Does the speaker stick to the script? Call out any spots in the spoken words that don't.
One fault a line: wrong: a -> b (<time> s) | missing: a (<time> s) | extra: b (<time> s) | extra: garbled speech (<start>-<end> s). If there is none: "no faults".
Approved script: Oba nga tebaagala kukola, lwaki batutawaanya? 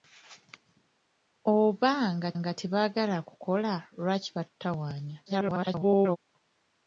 extra: nga (2.4 s)
extra: garbled speech (5.3-6.2 s)